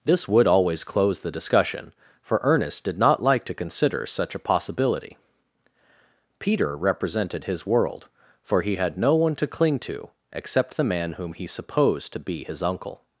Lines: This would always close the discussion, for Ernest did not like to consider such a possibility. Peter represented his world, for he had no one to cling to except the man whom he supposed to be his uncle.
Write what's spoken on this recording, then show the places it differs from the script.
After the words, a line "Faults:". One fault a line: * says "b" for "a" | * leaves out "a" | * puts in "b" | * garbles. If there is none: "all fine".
This would always close the discussion, for Ernest did not like to consider such a possibility. Peter represented his world, for he had no one to cling to except the man whom he supposed to be his uncle.
Faults:
all fine